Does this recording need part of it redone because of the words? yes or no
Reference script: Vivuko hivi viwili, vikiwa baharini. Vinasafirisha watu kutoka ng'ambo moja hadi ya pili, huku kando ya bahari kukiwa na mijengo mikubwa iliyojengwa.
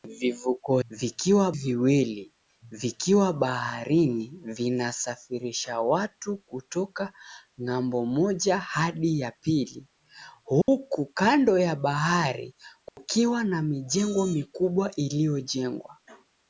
yes